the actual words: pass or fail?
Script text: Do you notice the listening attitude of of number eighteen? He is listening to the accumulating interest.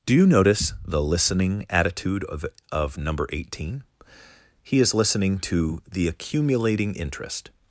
pass